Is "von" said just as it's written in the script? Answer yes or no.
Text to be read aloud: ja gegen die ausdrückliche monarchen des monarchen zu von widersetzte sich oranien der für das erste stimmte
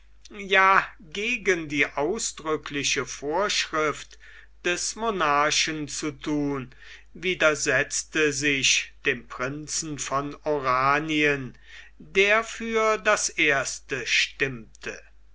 no